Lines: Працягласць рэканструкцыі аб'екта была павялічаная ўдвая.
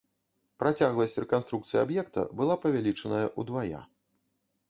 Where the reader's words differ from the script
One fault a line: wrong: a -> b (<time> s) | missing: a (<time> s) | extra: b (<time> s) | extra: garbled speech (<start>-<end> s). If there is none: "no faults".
no faults